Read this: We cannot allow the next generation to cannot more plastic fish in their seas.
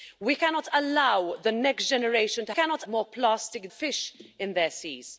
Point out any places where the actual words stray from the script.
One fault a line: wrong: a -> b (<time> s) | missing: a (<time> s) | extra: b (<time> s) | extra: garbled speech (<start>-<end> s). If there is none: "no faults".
no faults